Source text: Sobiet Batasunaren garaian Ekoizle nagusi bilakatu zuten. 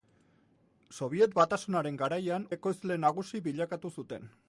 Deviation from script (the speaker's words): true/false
false